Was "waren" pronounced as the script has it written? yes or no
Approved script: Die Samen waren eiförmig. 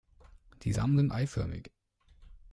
no